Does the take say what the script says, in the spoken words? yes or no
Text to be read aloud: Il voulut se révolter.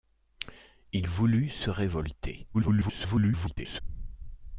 no